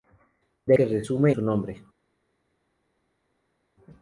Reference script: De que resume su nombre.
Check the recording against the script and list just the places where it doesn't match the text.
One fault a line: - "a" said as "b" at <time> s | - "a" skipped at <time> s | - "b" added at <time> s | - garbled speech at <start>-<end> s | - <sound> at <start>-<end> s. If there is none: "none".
none